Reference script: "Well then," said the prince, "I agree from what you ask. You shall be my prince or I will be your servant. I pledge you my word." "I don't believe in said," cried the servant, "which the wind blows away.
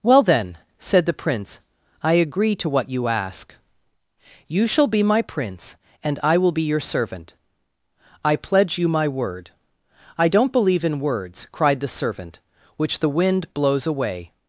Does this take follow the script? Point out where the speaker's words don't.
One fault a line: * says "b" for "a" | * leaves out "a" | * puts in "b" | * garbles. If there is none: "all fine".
* says "to" for "from"
* says "and" for "or"
* says "words" for "said"